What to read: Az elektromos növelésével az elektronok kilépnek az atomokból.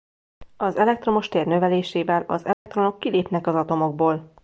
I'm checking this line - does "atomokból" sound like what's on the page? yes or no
yes